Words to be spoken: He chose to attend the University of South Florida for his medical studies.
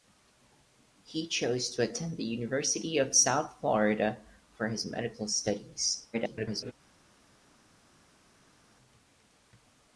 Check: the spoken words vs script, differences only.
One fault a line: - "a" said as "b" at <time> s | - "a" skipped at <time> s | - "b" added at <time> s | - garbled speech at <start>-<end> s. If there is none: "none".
- garbled speech at 6.1-6.7 s